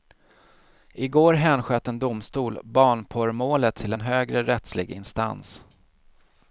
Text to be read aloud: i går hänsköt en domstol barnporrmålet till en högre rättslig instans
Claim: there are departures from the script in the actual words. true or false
false